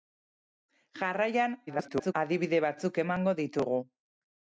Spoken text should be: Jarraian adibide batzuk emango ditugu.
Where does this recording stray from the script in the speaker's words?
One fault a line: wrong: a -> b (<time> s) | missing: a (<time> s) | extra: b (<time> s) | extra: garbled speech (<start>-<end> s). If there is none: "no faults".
extra: garbled speech (1.7-2.1 s)